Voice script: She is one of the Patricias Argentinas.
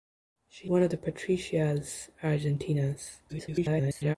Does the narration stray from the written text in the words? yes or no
yes